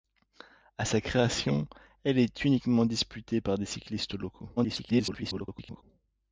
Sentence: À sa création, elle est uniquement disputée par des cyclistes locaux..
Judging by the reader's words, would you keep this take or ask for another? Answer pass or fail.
fail